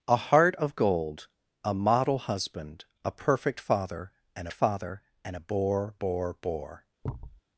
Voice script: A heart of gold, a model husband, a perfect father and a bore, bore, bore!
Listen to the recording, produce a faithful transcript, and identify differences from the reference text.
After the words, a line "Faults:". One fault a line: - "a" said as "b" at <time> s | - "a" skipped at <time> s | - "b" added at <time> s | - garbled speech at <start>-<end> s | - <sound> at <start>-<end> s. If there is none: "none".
A heart of gold, a model husband, a perfect father and father and a bore, bore, bore!
Faults:
- "father and" added at 4.5 s
- thud at 7.0-7.4 s